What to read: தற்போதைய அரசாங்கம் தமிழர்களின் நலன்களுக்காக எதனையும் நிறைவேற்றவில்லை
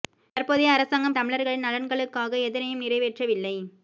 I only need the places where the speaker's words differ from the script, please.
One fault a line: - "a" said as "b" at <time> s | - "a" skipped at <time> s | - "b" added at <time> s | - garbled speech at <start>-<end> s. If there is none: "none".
none